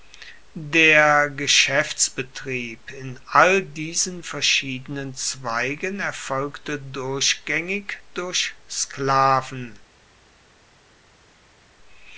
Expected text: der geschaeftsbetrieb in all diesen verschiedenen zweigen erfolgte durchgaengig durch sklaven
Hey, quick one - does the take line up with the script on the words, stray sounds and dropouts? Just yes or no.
yes